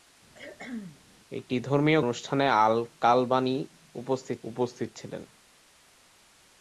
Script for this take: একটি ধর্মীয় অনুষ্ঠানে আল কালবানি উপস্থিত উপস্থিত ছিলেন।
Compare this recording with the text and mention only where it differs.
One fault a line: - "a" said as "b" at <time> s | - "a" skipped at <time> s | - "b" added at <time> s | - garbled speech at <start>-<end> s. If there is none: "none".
none